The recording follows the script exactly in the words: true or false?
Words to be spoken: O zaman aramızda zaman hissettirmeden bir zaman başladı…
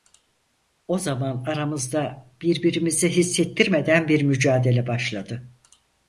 false